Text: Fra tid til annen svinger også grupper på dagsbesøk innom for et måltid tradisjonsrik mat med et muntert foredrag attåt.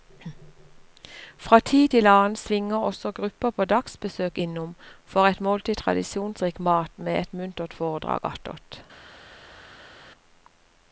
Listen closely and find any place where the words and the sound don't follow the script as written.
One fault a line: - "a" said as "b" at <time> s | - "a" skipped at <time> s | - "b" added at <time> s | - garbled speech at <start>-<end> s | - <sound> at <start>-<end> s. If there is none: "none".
none